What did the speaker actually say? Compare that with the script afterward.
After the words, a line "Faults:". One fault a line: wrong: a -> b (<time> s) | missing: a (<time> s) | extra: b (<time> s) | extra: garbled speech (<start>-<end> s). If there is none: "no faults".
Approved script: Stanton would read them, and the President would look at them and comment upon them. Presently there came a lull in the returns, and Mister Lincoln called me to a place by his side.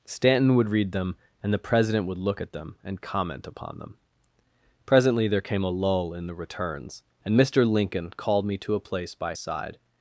Stanton would read them, and the President would look at them and comment upon them. Presently there came a lull in the returns, and Mister Lincoln called me to a place by side.
Faults:
missing: his (9.3 s)